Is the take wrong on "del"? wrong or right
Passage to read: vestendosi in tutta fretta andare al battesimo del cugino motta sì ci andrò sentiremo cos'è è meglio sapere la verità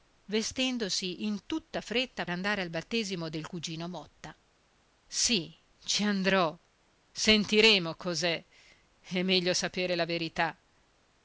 right